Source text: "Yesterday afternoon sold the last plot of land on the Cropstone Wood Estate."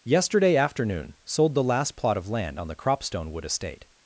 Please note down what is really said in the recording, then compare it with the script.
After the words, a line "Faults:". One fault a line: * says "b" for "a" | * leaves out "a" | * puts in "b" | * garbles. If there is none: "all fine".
"Yesterday afternoon sold the last plot of land on the Cropstone Wood Estate."
Faults:
all fine